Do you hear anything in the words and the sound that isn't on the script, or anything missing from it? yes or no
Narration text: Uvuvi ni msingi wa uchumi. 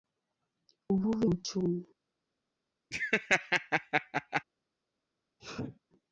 yes